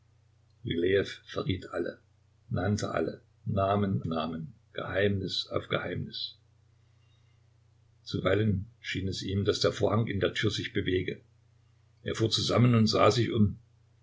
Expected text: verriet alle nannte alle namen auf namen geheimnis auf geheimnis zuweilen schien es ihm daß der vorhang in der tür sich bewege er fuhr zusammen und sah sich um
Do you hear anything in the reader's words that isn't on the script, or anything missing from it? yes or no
yes